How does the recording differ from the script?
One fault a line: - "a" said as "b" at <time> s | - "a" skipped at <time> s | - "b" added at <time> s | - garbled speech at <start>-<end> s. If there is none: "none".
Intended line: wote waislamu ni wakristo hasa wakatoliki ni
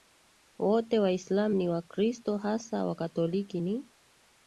none